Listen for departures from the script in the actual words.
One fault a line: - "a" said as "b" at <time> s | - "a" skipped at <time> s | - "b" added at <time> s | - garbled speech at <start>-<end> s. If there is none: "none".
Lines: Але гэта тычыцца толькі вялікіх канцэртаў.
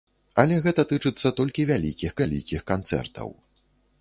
- "вялікіх" added at 2.2 s